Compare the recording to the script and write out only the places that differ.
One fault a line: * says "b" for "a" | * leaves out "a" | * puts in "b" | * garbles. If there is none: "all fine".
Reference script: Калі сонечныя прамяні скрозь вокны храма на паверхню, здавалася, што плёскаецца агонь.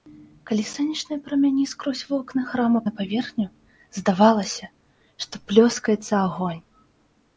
all fine